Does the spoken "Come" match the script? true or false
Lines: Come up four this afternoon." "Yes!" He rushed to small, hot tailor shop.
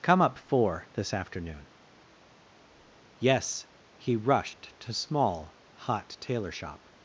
true